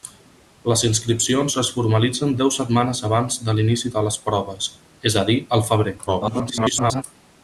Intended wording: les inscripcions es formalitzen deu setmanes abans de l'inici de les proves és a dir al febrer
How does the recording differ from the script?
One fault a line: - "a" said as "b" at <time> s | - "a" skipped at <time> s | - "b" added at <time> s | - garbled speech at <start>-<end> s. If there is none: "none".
- garbled speech at 6.1-7.0 s